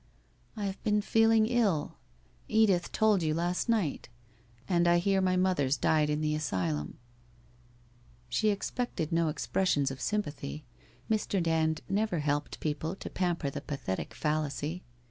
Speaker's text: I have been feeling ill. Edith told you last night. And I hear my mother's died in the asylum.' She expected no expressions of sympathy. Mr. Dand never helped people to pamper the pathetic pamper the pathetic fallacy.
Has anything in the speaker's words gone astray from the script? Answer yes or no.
yes